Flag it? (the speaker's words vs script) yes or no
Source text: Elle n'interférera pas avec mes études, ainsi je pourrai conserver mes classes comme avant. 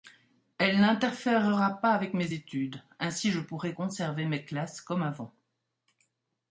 no